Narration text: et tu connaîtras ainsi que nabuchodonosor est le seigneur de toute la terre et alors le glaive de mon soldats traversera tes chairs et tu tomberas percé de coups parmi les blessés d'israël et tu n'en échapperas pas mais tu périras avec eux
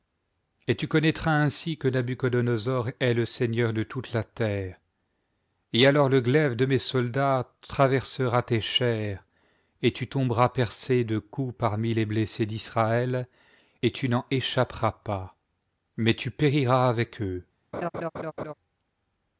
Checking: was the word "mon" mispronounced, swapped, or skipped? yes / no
yes